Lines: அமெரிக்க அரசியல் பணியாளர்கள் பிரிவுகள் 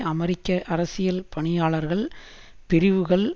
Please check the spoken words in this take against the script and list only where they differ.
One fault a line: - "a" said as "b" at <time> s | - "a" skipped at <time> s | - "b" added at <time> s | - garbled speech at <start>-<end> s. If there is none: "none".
none